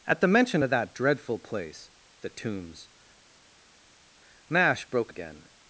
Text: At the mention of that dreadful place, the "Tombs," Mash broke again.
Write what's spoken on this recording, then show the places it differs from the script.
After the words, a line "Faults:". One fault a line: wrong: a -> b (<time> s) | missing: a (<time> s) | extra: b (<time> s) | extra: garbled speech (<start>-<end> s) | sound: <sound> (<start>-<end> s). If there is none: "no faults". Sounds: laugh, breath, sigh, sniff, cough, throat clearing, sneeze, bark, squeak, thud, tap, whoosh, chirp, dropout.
At the mention of that dreadful place, the "Tombs," Mash broke again.
Faults:
no faults